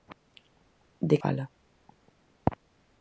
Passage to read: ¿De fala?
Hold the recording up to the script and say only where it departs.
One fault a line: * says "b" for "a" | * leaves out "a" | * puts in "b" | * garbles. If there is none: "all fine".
all fine